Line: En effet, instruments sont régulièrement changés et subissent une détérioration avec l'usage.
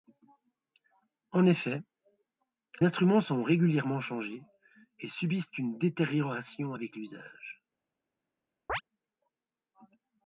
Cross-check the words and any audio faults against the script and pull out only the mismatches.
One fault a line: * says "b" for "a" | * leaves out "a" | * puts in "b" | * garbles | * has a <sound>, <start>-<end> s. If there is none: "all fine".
* has a chirp, 8.7-8.8 s